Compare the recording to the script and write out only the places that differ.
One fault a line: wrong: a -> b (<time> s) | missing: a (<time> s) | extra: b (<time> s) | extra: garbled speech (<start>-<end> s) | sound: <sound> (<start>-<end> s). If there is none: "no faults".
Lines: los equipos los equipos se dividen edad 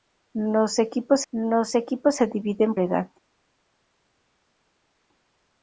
no faults